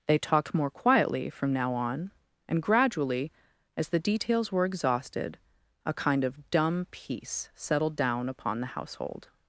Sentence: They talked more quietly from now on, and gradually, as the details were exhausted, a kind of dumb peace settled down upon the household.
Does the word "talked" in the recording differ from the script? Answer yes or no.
no